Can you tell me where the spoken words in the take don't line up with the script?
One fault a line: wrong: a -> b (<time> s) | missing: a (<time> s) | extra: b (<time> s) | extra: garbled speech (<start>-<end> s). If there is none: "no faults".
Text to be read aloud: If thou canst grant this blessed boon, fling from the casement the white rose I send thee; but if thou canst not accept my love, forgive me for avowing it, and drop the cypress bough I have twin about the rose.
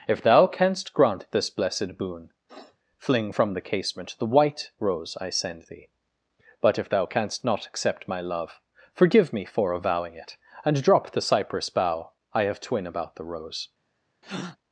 no faults